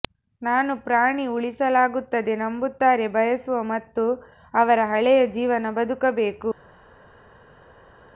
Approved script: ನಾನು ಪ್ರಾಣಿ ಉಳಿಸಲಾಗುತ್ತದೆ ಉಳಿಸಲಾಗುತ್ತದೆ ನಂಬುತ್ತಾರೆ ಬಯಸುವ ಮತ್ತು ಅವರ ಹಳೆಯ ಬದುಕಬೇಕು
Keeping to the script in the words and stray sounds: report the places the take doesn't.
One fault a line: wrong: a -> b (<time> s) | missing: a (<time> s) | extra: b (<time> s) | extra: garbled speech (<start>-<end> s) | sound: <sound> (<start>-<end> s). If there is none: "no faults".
missing: ಉಳಿಸಲಾಗುತ್ತದೆ (2.4 s)
extra: ಜೀವನ (5.3 s)